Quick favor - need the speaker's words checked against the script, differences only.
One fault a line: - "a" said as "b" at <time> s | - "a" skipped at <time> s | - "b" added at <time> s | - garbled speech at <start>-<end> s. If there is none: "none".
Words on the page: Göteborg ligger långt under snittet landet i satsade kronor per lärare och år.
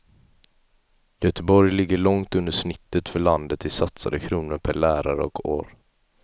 - "för" added at 3.1 s